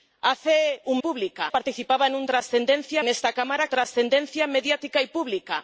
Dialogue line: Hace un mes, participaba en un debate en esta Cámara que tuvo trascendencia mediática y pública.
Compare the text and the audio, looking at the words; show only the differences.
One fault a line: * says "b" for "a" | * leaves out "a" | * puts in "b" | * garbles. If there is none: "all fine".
* says "pública" for "mes"
* says "trascendencia" for "debate"
* leaves out "que tuvo"